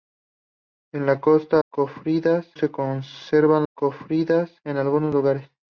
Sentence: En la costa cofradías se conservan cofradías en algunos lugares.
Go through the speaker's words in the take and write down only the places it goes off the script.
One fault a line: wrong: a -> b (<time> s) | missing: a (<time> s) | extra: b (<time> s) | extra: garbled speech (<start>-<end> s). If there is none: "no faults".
no faults